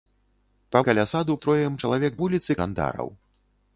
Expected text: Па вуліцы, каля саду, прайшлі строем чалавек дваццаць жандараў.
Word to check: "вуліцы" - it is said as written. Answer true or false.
false